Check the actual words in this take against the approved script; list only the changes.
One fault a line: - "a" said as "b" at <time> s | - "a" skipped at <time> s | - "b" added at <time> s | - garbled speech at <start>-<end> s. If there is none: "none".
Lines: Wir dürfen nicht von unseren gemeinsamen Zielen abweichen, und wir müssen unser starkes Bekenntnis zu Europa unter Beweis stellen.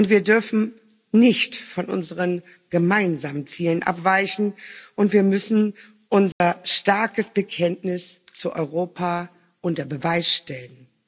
none